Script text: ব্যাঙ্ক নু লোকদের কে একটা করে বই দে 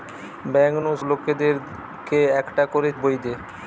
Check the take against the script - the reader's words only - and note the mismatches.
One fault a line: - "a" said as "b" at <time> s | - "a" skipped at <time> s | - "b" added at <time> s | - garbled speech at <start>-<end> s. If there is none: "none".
none